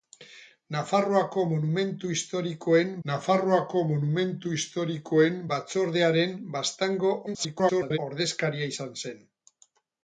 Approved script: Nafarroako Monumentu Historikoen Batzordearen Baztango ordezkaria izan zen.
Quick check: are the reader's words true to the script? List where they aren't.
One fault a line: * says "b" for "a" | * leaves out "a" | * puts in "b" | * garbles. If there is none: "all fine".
* puts in "nafarroako Monumentu Historikoen"
* garbles